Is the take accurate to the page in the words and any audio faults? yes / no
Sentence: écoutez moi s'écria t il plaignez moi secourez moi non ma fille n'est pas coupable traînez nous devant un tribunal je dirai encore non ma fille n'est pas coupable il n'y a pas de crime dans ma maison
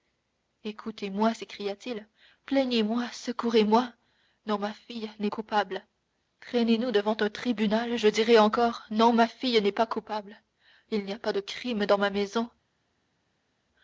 no